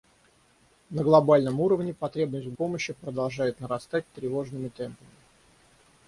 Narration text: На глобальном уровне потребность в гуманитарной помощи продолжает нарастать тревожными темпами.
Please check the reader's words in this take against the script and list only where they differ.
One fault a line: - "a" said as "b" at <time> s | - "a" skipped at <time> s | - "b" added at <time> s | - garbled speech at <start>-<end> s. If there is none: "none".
- "гуманитарной" skipped at 2.5 s